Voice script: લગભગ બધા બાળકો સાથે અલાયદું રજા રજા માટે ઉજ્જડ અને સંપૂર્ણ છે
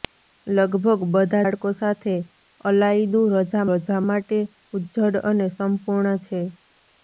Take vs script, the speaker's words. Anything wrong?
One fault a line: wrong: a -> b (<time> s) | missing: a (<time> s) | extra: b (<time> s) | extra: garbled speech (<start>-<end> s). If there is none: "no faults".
no faults